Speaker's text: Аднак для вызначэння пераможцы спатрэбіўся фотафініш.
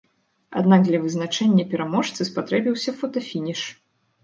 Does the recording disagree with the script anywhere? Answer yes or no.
no